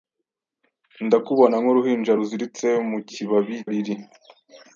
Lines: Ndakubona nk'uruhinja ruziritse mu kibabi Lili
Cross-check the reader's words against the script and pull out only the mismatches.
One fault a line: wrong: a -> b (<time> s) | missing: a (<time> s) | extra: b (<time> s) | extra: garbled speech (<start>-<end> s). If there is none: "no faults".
no faults